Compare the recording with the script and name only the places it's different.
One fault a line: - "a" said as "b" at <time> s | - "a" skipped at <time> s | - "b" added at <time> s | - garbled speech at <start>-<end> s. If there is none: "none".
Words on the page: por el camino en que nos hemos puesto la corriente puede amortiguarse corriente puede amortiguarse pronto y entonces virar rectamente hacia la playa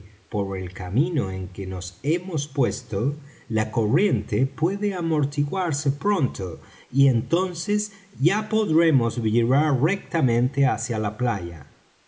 - "corriente puede amortiguarse" skipped at 5.9 s
- "ya podremos" added at 8.2 s